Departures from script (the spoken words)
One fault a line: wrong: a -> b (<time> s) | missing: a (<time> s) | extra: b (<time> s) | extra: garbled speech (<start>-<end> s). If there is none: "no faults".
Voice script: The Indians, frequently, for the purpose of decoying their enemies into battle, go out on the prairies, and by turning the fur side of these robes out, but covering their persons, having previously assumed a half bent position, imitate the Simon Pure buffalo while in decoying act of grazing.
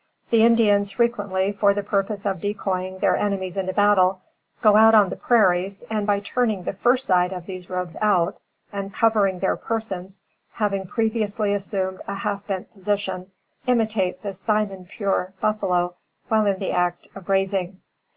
wrong: but -> and (8.7 s)
wrong: decoying -> the (16.6 s)